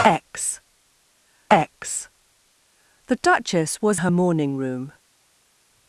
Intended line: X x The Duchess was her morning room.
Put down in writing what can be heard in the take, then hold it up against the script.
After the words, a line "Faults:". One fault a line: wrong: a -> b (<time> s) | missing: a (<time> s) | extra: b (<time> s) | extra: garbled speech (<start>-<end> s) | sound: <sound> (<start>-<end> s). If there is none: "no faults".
X x The Duchess was her morning room.
Faults:
no faults